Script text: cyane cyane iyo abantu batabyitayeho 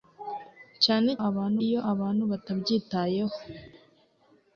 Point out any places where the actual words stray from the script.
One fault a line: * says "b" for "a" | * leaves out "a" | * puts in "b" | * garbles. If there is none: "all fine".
* says "abantu" for "cyane"